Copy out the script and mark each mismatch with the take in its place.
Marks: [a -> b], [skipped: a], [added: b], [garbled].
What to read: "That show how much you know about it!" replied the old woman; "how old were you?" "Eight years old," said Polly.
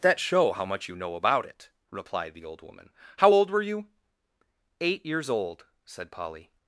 "That show how much you know about it!" replied the old woman; "how old were you?" "Eight years old," said Polly.